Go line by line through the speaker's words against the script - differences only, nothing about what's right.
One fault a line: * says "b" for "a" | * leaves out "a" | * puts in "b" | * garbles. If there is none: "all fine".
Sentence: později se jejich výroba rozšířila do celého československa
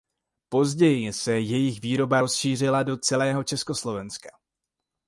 all fine